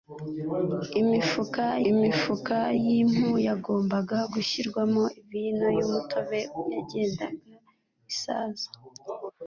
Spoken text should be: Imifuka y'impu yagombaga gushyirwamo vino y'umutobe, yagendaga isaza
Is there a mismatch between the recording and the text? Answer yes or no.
yes